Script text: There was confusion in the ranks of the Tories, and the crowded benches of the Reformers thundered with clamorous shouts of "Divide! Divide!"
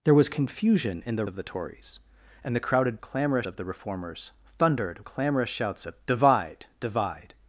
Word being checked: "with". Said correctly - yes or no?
no